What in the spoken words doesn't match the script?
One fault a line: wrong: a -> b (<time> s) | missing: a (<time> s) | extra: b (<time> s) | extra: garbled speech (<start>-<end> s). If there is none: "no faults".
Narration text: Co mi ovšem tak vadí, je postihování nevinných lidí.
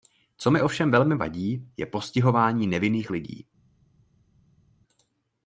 wrong: tak -> velmi (0.9 s)